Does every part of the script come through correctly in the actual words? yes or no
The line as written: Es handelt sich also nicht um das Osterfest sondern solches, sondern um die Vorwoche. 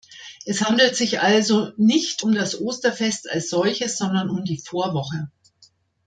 no